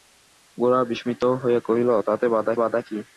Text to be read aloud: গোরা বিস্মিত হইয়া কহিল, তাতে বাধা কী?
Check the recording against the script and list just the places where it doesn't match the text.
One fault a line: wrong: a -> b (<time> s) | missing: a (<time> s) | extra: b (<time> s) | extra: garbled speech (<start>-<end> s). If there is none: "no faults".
extra: বাধা (2.6 s)